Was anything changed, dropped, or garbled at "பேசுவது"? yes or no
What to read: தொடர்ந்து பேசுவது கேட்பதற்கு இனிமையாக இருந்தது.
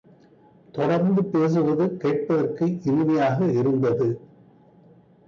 no